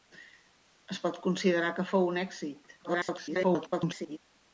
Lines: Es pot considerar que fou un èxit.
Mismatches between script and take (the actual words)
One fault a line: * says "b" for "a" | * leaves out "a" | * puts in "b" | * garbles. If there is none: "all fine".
* garbles